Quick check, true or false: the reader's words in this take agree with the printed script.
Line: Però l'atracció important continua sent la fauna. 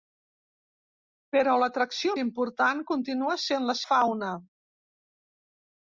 true